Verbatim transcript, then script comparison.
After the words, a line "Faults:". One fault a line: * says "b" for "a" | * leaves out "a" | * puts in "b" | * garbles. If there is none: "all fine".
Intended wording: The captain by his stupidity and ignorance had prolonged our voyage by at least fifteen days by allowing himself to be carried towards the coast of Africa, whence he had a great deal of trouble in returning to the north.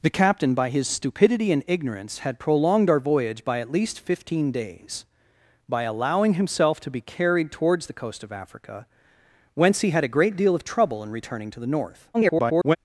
The captain by his stupidity and ignorance had prolonged our voyage by at least fifteen days by allowing himself to be carried towards the coast of Africa, whence he had a great deal of trouble in returning to the north. [garbled]
Faults:
* garbles